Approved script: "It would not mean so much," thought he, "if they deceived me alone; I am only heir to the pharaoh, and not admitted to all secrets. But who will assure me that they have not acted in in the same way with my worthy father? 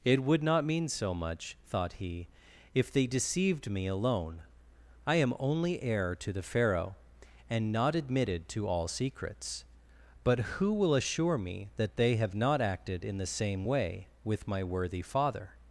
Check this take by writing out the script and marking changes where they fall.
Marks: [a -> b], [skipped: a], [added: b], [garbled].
"It would not mean so much," thought he, "if they deceived me alone; I am only heir to the pharaoh, and not admitted to all secrets. But who will assure me that they have not acted in [skipped: in] the same way with my worthy father?